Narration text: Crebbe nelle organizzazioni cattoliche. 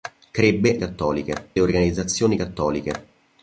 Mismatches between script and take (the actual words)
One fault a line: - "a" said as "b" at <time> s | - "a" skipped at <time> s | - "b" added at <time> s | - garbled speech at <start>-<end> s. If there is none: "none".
- "nelle" said as "cattoliche" at 0.8 s